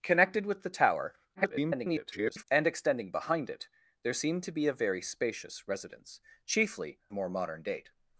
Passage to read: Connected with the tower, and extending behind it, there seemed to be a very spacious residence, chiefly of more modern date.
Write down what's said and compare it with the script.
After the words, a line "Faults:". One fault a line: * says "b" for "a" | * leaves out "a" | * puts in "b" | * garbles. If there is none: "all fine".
Connected with the tower, [garbled] and extending behind it, there seemed to be a very spacious residence, chiefly more modern date.
Faults:
* garbles
* leaves out "of"